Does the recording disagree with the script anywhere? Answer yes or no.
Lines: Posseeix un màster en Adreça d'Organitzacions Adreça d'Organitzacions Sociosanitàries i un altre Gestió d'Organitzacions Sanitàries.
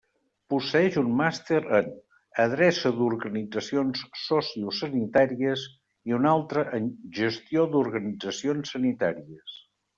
yes